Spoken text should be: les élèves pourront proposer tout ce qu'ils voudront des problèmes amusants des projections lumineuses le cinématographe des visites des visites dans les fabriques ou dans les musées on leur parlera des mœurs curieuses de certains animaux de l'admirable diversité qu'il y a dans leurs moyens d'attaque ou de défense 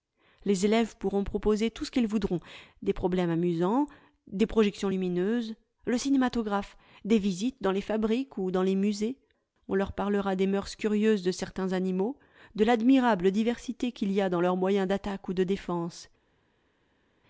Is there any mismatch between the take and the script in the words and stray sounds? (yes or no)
yes